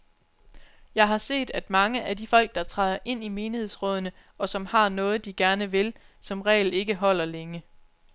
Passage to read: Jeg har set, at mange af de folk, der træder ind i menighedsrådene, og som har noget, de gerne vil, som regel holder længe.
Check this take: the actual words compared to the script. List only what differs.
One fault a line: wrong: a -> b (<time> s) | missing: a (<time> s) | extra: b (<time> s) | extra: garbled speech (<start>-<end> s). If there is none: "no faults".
extra: ikke (6.7 s)